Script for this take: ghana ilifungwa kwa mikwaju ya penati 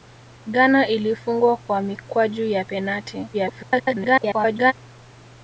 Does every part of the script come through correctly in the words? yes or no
no